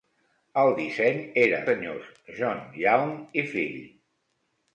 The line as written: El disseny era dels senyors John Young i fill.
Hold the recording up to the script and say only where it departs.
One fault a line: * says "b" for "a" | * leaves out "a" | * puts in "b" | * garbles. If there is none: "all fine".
* leaves out "dels"